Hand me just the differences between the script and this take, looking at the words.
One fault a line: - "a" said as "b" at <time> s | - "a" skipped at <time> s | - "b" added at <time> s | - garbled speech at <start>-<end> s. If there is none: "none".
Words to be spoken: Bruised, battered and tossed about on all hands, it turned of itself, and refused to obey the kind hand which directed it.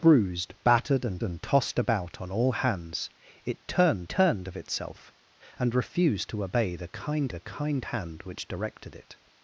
- "and" added at 1.2 s
- "turned" added at 4.1 s
- "the kind" added at 7.3 s